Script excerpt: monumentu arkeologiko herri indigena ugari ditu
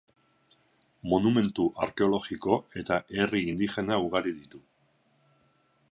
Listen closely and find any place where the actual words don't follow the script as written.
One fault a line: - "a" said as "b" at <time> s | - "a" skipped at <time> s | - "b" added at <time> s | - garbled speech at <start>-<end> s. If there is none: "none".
- "eta" added at 2.8 s